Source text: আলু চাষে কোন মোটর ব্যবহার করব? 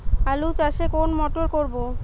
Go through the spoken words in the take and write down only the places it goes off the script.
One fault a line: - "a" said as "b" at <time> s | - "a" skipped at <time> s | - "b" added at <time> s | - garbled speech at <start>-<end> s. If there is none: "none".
- "ব্যবহার" skipped at 1.4 s